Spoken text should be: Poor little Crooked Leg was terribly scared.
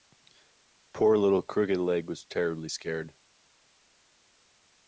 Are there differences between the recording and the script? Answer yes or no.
no